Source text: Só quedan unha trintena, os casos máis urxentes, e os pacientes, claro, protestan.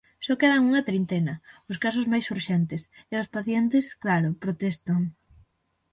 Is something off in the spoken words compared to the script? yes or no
no